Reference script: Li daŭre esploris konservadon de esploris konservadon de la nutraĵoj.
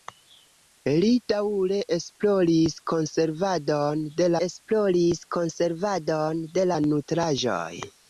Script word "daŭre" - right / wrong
right